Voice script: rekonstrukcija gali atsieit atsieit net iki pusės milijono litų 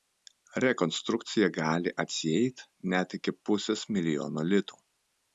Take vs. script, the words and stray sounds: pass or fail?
fail